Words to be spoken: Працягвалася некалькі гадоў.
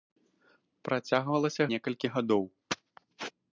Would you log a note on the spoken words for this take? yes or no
no